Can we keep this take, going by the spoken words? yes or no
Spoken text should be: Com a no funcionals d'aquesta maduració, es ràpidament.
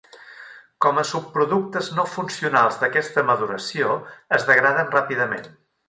no